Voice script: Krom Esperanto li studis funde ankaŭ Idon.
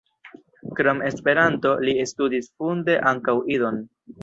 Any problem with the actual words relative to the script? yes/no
no